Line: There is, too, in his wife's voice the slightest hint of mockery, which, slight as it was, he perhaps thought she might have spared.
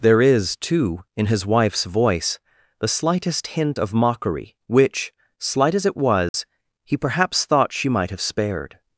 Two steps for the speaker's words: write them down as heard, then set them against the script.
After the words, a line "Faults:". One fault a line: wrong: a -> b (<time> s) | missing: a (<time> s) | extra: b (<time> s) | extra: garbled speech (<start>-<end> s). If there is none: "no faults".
There is, too, in his wife's voice the slightest hint of mockery, which, slight as it was, he perhaps thought she might have spared.
Faults:
no faults